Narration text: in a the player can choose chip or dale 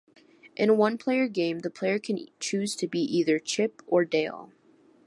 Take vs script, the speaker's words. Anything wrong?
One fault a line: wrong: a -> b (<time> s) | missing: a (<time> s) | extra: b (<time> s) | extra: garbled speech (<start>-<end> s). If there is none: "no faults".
extra: one player game (0.7 s)
extra: to be either (2.8 s)